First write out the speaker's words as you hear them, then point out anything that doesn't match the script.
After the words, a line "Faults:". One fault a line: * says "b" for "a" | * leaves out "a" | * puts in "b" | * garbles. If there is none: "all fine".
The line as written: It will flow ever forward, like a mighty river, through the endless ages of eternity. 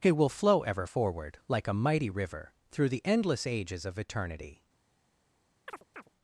It will flow ever forward, like a mighty river, through the endless ages of eternity.
Faults:
all fine